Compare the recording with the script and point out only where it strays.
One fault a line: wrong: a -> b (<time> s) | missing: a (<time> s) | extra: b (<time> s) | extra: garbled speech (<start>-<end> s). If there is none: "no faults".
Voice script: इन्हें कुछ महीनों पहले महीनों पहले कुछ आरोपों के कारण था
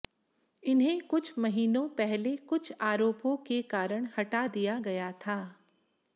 missing: महीनों पहले (2.4 s)
extra: हटा दिया गया (4.2 s)